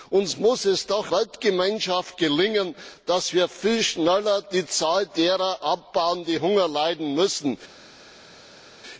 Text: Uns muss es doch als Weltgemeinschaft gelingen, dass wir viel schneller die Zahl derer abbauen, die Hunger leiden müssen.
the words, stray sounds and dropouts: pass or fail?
fail